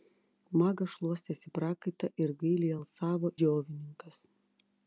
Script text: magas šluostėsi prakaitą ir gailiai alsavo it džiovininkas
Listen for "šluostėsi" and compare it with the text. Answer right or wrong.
right